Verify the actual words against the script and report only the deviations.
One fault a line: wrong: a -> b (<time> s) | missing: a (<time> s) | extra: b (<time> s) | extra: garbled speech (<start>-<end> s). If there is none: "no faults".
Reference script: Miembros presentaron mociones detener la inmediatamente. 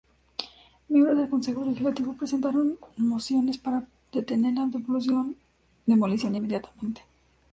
extra: del Consejo Legislativo (1.1 s)
extra: para (3.6 s)
extra: demolición (5.8 s)